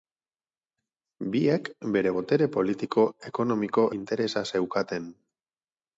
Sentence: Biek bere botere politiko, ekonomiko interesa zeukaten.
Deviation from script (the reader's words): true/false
false